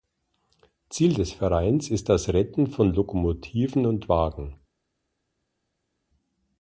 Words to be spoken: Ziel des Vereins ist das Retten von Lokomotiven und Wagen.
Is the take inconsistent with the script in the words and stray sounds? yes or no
no